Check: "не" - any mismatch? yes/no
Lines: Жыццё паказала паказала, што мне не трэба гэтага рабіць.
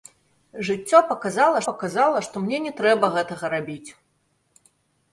no